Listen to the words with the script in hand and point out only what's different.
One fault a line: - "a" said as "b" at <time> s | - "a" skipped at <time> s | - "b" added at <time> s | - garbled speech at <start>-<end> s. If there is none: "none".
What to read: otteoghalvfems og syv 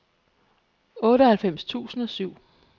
- "tusind" added at 1.6 s